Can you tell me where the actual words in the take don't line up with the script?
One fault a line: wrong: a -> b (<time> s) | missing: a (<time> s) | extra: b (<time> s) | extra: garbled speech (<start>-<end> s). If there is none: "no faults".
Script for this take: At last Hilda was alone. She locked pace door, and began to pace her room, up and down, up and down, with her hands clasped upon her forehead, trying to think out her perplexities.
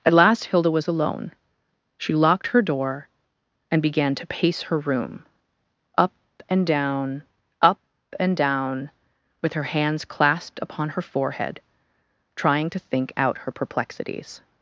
wrong: pace -> her (2.5 s)